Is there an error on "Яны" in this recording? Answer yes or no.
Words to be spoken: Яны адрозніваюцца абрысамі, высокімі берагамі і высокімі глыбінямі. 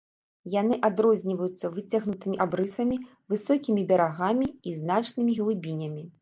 no